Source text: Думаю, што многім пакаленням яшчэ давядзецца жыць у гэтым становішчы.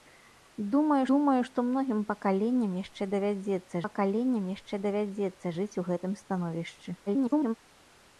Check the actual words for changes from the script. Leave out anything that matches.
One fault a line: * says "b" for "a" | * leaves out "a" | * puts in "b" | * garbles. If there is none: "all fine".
* puts in "думаю"
* puts in "пакаленням яшчэ давядзецца"
* garbles